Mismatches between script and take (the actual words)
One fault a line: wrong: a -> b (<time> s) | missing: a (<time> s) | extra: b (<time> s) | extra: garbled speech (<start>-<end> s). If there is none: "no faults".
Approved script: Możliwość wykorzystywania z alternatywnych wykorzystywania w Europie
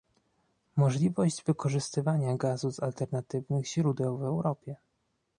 extra: gazu (2.4 s)
wrong: wykorzystywania -> źródeł (3.7 s)